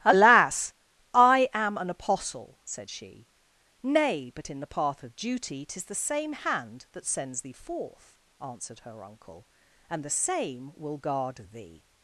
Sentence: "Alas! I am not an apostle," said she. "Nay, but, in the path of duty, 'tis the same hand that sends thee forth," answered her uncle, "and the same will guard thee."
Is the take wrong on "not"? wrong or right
wrong